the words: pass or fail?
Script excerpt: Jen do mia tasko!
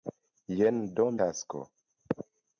fail